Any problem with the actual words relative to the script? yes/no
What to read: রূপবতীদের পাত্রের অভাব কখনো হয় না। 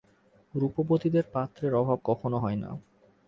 no